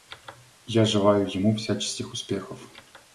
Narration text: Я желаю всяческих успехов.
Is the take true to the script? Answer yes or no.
no